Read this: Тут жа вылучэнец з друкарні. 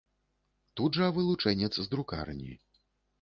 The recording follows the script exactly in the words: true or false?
true